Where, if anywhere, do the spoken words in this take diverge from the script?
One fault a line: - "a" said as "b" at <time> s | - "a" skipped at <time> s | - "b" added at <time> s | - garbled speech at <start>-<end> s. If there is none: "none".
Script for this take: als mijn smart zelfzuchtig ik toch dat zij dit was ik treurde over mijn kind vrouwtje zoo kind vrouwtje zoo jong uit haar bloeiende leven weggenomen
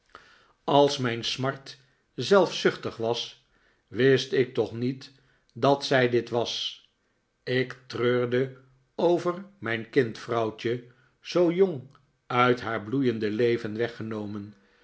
- "was wist" added at 3.0 s
- "niet" added at 4.7 s
- "kind vrouwtje zoo" skipped at 11.5 s